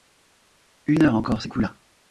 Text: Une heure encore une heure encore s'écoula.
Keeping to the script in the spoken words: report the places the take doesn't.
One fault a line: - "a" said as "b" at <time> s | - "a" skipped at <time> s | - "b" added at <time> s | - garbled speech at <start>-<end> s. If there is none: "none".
- "une heure encore" skipped at 1.4 s